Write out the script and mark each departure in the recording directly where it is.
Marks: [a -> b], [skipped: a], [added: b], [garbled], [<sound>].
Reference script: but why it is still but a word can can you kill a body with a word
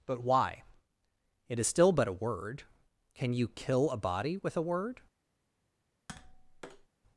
but why it is still but a word can [skipped: can] you kill a body with a word [tap]